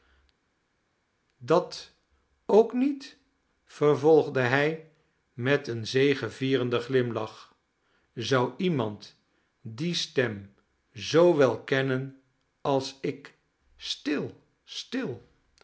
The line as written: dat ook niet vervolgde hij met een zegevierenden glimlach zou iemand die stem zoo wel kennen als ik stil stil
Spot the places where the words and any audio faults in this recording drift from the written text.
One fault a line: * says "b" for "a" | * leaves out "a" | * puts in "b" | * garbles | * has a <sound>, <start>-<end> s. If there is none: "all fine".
all fine